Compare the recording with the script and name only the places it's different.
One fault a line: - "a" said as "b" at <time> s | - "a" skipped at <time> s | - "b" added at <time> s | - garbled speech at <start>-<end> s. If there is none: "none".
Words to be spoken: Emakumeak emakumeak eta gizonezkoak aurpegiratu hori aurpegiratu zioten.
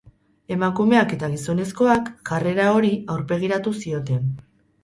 - "emakumeak" skipped at 1.1 s
- "aurpegiratu" said as "jarrera" at 2.3 s